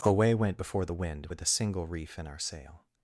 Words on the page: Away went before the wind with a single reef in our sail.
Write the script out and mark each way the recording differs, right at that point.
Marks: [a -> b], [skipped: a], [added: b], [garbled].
Away went before the wind with a single reef in our sail.